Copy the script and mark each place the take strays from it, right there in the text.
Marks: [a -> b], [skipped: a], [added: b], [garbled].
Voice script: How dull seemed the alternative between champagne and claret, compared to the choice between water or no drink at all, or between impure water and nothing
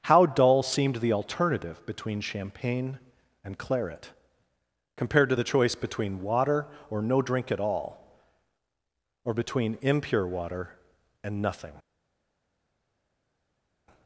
How dull seemed the alternative between champagne and claret, compared to the choice between water or no drink at all, or between impure water and nothing